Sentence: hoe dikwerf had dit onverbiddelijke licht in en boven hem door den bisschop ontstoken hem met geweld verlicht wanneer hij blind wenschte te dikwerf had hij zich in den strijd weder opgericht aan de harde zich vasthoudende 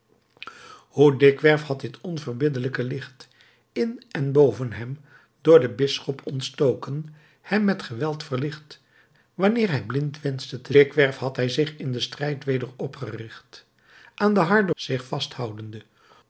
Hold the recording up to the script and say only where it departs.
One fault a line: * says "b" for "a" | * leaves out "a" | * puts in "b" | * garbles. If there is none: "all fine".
all fine